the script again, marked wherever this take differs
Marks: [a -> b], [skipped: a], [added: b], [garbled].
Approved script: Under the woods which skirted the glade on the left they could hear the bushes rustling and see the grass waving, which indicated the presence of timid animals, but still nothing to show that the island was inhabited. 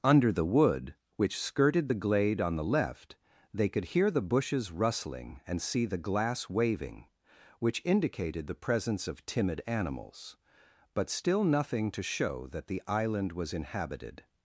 Under the [woods -> wood] which skirted the glade on the left they could hear the bushes rustling and see the [grass -> glass] waving, which indicated the presence of timid animals, but still nothing to show that the island was inhabited.